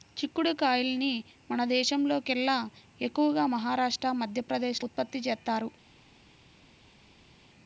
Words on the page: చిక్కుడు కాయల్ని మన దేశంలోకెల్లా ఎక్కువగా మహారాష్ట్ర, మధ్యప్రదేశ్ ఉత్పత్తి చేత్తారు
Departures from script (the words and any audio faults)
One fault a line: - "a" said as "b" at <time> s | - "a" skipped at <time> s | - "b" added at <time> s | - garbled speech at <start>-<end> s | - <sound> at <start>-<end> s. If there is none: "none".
none